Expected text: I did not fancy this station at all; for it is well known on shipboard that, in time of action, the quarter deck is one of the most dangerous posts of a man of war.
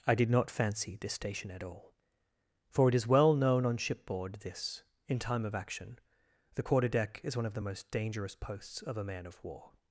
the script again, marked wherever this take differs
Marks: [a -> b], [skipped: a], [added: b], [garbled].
I did not fancy this station at all; for it is well known on shipboard [that, -> this] in time of action, the quarter deck is one of the most dangerous posts of a man of war.